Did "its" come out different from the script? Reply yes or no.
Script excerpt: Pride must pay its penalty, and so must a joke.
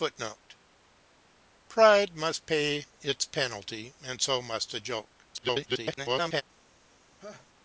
no